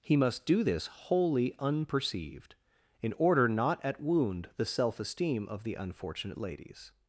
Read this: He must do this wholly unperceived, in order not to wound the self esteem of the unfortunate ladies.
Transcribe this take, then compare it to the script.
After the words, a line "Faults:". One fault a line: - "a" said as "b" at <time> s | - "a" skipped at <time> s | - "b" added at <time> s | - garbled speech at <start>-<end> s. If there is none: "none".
He must do this wholly unperceived, in order not at wound the self esteem of the unfortunate ladies.
Faults:
- "to" said as "at" at 3.8 s